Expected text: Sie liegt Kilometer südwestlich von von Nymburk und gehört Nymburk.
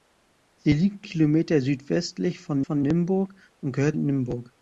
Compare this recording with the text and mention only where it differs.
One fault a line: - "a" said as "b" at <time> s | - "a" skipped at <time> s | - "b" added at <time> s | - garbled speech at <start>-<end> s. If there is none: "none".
none